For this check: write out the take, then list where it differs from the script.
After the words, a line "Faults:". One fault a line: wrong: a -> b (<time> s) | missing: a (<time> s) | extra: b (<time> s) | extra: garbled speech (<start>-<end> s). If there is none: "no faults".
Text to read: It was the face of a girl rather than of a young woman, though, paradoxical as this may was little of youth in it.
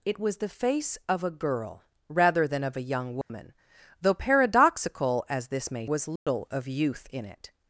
It was the face of a girl rather than of a young woman, though, paradoxical as this may was little of youth in it.
Faults:
no faults